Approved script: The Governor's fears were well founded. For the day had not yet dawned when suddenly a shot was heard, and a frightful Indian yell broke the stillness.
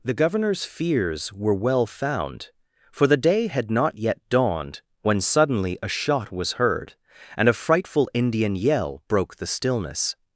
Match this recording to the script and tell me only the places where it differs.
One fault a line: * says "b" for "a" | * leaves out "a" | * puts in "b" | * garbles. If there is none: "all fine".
* says "found" for "founded"